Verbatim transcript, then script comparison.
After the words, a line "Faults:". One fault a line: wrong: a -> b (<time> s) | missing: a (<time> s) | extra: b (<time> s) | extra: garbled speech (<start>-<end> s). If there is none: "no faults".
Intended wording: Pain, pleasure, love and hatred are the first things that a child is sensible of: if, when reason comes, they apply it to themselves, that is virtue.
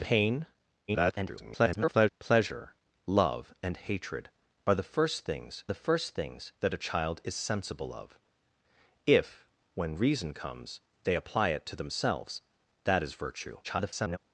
Pain, [garbled] pleasure, love and hatred are the first things the first things that a child is sensible of: if, when reason comes, they apply it to themselves, that is virtue. [garbled]
Faults:
extra: garbled speech (0.9-2.1 s)
extra: the first things (5.7 s)
extra: garbled speech (13.6-14.2 s)